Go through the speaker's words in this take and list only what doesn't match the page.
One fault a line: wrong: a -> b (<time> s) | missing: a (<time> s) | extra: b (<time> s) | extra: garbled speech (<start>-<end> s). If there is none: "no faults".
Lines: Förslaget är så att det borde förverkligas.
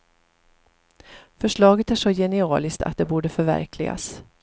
extra: genialiskt (2.1 s)